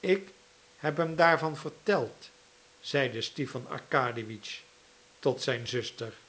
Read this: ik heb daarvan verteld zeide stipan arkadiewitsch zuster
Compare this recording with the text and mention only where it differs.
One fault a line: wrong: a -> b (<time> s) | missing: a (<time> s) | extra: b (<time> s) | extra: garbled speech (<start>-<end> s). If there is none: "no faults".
extra: hem (1.0 s)
extra: tot zijn (5.2 s)